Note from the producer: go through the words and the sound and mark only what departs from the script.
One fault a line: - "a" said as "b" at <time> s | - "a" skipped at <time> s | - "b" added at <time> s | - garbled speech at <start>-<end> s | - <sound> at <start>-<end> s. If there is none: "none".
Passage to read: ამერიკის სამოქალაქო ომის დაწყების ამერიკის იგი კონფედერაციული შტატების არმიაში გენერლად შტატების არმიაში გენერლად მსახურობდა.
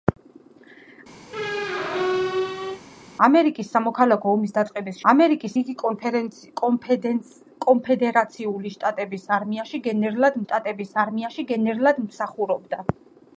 - squeak at 1.3-2.8 s